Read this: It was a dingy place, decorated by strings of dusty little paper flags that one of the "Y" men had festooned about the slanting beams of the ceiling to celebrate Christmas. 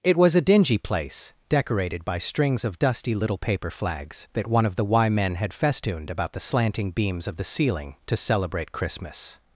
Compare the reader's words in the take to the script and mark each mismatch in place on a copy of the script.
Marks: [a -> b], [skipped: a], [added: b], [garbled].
It was a dingy place, decorated by strings of dusty little paper flags that one of the "Y" men had festooned about the slanting beams of the ceiling to celebrate Christmas.